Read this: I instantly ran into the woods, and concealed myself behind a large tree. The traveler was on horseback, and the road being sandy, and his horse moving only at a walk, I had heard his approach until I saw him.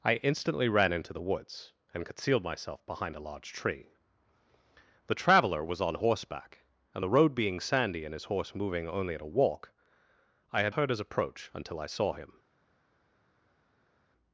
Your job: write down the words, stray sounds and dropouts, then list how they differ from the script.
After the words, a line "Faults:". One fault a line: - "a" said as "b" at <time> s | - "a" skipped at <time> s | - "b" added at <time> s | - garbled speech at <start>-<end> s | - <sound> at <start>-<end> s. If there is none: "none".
I instantly ran into the woods, and concealed myself behind a large tree. The traveler was on horseback, and the road being sandy, and his horse moving only at a walk, I had heard his approach until I saw him.
Faults:
none